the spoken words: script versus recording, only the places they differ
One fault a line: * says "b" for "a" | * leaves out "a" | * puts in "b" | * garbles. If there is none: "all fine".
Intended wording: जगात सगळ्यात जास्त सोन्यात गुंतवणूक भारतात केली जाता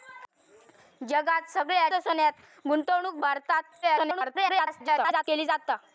* leaves out "जास्त"
* garbles